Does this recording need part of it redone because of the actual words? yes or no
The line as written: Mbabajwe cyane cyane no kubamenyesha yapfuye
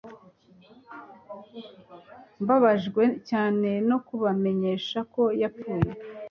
yes